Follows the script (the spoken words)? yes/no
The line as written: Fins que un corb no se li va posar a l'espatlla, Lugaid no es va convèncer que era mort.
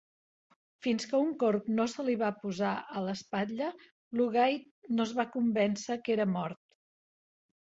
yes